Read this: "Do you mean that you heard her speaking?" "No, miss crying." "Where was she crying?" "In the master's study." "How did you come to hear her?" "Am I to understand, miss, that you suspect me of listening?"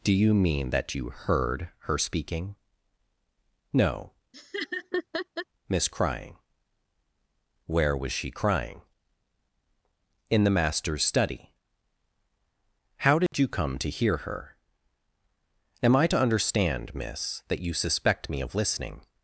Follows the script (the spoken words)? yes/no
yes